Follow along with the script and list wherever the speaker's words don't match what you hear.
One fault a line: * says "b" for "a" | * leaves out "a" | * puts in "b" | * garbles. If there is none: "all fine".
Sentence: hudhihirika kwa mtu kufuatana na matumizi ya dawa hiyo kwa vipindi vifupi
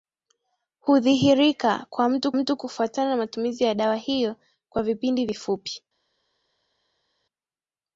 * puts in "mtu"